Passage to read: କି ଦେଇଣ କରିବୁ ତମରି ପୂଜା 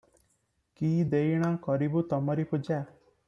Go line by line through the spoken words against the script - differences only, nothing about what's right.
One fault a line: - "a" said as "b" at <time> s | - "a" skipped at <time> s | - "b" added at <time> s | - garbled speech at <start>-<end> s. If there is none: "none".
none